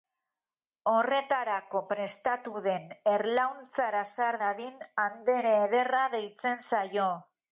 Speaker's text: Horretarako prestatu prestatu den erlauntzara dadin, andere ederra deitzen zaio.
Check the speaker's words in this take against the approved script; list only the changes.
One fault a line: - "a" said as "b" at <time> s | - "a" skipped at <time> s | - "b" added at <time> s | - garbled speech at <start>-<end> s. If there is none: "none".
- "prestatu" skipped at 2.6 s
- "sar" added at 4.2 s